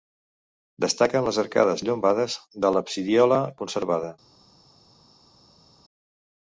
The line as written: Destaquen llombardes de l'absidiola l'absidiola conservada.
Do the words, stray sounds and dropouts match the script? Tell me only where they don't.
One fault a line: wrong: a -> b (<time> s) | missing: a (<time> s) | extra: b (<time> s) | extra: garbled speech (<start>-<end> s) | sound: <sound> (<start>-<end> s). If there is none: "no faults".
extra: les arcades (1.3 s)
missing: l'absidiola (3.4 s)